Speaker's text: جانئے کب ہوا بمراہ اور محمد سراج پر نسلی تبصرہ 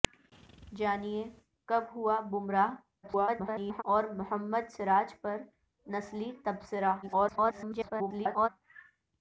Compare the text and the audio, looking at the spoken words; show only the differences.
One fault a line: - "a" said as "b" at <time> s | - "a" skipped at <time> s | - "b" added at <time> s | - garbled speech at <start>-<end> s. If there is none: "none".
- garbled speech at 3.0-3.8 s
- garbled speech at 7.0-8.5 s